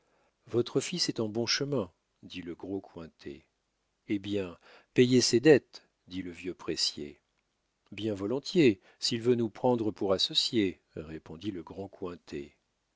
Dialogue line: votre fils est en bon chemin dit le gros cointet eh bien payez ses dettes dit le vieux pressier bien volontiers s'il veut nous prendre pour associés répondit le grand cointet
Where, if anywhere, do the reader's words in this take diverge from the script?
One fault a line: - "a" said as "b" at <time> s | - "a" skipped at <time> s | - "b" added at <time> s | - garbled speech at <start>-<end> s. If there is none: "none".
none